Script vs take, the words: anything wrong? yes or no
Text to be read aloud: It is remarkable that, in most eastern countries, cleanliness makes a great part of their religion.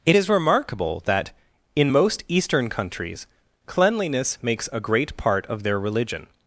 no